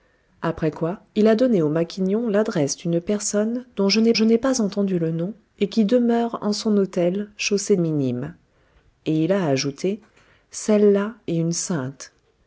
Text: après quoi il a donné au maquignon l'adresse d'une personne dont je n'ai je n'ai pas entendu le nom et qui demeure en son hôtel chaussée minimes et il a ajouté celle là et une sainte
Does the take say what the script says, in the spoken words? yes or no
yes